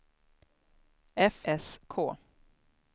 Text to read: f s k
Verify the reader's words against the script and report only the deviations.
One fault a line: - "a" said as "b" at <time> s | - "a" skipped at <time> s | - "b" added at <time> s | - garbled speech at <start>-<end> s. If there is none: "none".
none